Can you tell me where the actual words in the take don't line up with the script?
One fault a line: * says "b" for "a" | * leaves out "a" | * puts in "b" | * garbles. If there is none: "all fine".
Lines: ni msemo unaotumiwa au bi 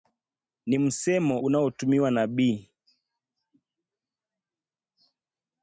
* says "na" for "au"